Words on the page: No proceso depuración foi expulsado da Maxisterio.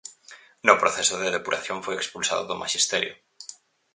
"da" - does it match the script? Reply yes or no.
no